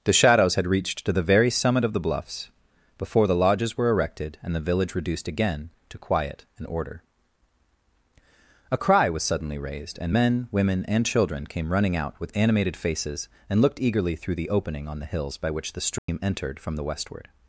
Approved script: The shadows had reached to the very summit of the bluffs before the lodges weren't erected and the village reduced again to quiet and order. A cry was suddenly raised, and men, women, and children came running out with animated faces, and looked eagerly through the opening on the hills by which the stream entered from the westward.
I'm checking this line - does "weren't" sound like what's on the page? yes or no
no